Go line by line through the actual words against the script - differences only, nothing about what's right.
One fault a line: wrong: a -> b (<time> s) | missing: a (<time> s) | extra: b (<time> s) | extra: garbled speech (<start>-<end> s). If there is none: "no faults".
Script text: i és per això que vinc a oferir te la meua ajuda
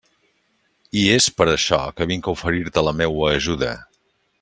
no faults